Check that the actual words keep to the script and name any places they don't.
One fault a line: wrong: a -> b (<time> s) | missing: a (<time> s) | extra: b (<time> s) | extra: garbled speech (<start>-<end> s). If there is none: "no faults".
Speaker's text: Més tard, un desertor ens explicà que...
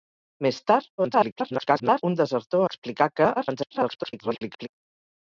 extra: garbled speech (1.0-2.0 s)
missing: ens (2.6 s)
extra: garbled speech (3.4-4.7 s)